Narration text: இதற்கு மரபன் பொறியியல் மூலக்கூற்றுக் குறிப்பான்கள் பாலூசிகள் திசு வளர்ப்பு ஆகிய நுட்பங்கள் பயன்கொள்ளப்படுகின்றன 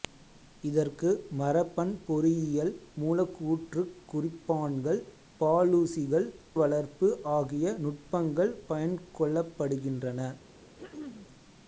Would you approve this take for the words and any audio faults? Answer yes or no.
no